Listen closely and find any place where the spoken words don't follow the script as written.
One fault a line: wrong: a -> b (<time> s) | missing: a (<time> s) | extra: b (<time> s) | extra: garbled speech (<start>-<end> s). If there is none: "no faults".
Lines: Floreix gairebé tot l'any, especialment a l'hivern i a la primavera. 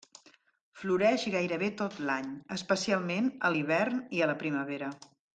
no faults